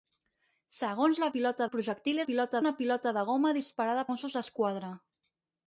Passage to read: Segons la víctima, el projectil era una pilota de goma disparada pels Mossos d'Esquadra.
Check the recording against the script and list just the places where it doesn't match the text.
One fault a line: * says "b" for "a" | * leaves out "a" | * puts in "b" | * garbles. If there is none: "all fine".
* says "pilota" for "víctima"
* says "pilota" for "era"
* leaves out "pels"